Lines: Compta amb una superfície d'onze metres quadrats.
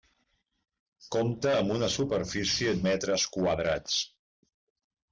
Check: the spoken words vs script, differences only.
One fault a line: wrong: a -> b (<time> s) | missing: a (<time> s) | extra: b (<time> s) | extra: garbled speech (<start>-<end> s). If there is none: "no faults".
missing: d'onze (2.7 s)